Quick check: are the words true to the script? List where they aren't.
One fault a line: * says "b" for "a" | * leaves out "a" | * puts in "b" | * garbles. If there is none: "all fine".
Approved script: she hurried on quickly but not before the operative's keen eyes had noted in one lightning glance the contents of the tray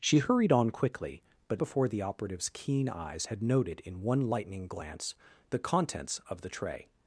* leaves out "not"